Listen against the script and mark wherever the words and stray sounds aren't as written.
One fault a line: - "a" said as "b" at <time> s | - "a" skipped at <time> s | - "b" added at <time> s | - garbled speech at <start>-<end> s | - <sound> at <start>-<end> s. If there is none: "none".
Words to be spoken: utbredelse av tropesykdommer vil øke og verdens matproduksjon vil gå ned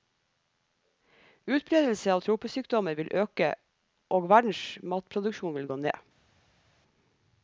none